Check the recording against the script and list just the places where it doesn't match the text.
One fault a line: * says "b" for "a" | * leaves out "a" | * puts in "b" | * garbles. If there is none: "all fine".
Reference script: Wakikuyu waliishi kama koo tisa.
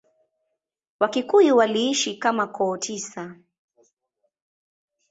all fine